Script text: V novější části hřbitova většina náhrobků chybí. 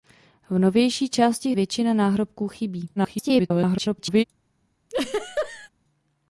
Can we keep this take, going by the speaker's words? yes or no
no